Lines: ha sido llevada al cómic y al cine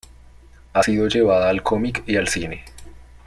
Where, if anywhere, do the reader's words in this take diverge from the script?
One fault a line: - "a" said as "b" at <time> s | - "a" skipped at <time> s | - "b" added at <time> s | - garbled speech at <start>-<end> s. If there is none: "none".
none